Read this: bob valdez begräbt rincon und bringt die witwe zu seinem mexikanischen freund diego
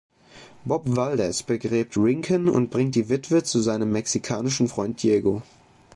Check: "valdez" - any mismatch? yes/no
no